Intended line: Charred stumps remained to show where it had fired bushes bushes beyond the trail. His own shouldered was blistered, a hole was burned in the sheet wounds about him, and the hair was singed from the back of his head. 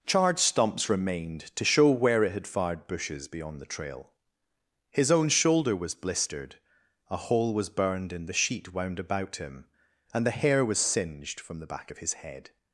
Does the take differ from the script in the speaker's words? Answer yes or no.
yes